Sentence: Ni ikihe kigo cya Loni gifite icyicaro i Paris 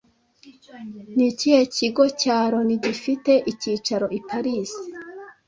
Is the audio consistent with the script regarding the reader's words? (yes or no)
yes